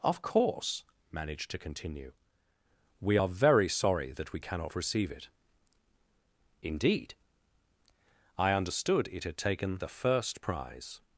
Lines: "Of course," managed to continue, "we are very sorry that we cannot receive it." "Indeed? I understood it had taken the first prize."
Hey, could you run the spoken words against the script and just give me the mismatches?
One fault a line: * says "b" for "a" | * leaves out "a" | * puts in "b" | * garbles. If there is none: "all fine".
all fine